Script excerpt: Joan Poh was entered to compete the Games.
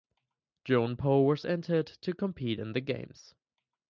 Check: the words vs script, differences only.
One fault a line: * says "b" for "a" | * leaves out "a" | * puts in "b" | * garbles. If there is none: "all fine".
* puts in "in"